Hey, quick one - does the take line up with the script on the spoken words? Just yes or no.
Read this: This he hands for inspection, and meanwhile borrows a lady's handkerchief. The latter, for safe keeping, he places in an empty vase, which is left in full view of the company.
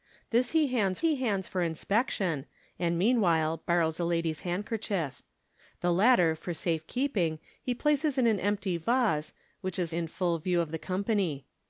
no